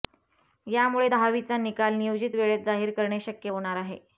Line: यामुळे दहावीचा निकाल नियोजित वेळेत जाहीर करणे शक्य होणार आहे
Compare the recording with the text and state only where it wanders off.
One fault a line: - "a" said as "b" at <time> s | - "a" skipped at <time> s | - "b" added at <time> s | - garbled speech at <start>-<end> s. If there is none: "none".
none